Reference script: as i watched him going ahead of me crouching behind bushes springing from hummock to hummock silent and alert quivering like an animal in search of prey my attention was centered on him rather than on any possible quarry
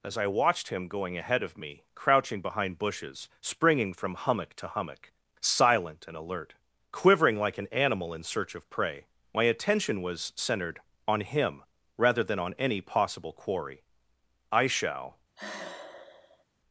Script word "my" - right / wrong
right